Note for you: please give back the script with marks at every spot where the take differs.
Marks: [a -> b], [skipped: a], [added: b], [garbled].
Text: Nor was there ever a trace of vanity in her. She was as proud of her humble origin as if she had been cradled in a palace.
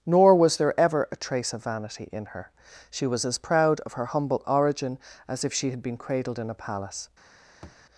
Nor was there ever a trace of vanity in her. She was as proud of her humble origin as if she had been cradled in a palace.